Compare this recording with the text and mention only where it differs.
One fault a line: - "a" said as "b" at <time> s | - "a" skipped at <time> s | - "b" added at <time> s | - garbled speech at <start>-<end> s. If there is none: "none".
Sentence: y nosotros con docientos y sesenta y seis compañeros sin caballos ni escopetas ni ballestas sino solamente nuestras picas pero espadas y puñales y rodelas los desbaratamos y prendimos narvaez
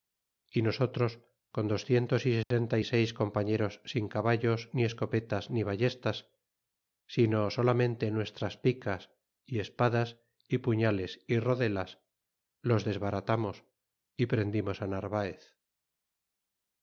- "pero" said as "y" at 9.4 s